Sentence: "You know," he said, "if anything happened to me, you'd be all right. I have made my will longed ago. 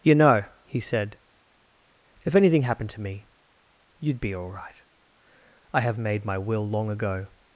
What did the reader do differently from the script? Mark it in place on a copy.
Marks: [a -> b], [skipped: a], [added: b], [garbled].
"You know," he said, "if anything happened to me, you'd be all right. I have made my will [longed -> long] ago.